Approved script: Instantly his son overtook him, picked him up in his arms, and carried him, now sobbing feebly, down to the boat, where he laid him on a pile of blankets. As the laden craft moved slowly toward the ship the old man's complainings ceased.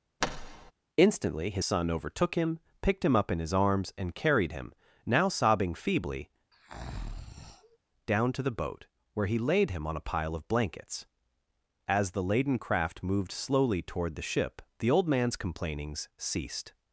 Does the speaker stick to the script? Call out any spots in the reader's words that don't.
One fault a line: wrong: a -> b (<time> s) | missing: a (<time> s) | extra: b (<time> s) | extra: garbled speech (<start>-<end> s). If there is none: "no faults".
no faults